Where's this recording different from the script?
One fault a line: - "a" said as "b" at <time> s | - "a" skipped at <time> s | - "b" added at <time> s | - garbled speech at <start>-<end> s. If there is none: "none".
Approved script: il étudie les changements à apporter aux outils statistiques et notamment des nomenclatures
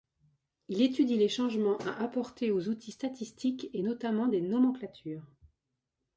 none